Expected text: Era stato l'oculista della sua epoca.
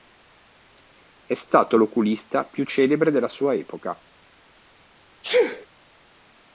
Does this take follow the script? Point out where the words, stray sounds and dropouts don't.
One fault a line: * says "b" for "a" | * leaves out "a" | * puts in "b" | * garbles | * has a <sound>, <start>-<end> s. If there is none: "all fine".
* says "È" for "Era"
* puts in "più celebre"
* has a sneeze, 5.2-5.7 s